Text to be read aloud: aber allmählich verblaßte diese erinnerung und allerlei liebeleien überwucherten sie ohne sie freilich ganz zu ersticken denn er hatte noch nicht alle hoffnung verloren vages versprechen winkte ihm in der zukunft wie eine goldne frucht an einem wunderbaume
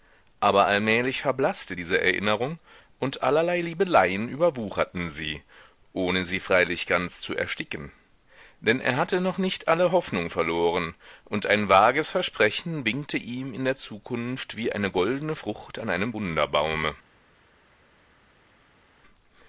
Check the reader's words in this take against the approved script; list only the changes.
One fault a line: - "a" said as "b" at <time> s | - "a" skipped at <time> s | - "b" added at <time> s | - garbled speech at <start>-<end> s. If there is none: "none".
- "und ein" added at 11.2 s